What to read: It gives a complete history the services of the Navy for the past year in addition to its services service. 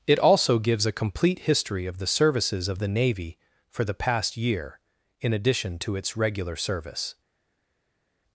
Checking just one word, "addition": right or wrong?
right